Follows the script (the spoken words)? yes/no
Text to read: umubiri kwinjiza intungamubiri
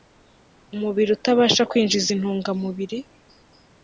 no